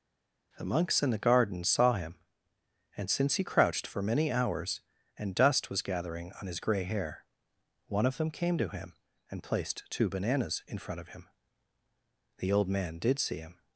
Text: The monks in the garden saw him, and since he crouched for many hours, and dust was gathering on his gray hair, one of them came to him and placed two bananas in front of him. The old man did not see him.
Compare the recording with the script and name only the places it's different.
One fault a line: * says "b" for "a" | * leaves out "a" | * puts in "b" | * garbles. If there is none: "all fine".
* leaves out "not"